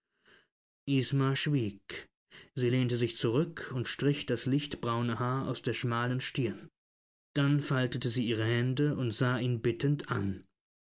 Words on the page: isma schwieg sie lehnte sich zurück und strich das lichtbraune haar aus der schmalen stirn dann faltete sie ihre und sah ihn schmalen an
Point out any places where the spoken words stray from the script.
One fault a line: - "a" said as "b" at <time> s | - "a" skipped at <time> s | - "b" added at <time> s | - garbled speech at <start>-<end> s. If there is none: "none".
- "hände" added at 8.4 s
- "schmalen" said as "bittend" at 9.6 s